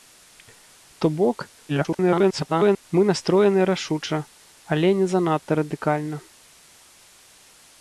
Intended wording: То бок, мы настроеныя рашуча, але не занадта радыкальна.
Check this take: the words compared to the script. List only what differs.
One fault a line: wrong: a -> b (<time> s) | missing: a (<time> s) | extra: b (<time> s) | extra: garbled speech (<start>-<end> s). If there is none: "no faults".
extra: garbled speech (1.7-2.8 s)